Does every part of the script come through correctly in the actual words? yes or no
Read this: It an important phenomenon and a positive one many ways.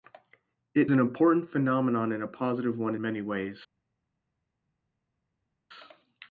yes